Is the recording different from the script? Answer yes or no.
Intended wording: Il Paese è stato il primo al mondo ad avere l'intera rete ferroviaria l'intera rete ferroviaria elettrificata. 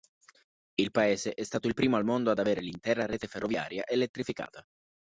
yes